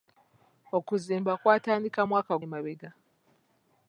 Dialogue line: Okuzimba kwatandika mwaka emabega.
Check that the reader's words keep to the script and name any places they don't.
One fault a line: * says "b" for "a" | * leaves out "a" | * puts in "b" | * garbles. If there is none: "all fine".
all fine